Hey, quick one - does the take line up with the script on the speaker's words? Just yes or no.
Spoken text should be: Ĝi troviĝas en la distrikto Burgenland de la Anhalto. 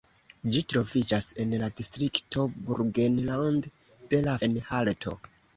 yes